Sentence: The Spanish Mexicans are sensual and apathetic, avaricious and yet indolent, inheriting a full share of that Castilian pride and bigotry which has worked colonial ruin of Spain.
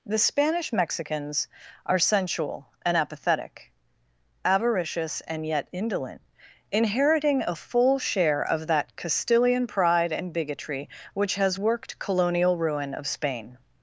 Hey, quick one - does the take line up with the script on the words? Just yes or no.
yes